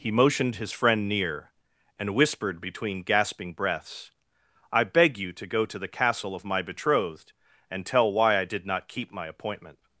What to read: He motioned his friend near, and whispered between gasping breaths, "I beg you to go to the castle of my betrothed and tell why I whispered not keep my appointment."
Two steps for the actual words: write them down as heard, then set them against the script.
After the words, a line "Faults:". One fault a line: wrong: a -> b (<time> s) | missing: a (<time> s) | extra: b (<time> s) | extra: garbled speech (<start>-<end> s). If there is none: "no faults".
He motioned his friend near, and whispered between gasping breaths, "I beg you to go to the castle of my betrothed and tell why I did not keep my appointment."
Faults:
wrong: whispered -> did (8.4 s)